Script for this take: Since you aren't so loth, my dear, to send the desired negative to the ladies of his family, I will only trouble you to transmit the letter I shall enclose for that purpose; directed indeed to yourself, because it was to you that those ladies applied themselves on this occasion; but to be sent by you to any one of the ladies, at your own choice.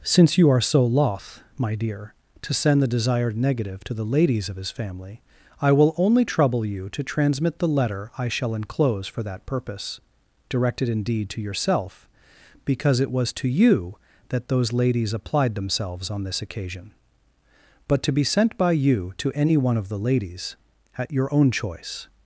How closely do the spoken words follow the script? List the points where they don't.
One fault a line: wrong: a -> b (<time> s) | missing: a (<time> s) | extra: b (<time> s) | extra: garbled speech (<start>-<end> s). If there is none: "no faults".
wrong: aren't -> are (0.5 s)